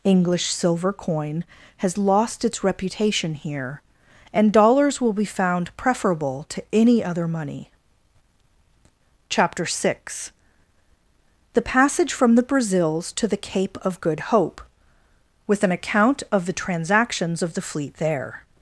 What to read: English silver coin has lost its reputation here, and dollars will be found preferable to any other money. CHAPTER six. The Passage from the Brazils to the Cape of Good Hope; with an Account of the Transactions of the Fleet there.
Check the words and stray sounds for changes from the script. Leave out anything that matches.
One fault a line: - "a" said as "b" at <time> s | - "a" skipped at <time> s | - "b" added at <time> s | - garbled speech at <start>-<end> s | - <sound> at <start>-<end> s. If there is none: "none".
none